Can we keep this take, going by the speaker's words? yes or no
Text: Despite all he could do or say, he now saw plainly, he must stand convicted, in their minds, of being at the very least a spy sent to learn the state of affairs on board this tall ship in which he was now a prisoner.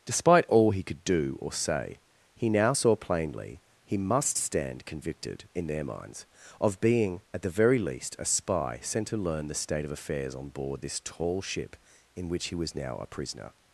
yes